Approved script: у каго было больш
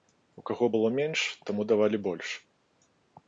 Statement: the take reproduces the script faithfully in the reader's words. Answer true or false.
false